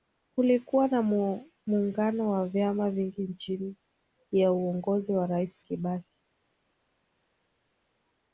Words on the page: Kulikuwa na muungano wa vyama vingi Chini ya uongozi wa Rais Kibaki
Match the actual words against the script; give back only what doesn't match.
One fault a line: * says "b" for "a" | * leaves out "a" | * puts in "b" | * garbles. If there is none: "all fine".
all fine